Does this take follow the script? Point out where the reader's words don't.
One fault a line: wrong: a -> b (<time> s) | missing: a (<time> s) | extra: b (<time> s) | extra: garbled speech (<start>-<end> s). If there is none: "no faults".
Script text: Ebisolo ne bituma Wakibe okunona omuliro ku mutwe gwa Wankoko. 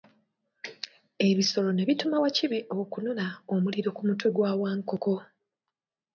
no faults